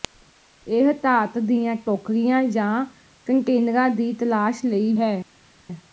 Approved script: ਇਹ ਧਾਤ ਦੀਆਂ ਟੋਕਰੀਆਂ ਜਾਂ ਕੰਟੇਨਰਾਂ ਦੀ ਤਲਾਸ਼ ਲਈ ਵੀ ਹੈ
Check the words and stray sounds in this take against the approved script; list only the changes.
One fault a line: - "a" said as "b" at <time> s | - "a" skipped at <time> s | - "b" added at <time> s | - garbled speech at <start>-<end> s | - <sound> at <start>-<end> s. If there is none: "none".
- "ਵੀ" skipped at 4.9 s